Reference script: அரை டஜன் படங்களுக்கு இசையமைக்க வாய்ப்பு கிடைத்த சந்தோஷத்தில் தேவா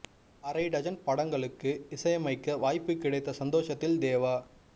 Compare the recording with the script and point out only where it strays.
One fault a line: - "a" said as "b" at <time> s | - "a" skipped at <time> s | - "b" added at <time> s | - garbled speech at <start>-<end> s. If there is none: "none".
none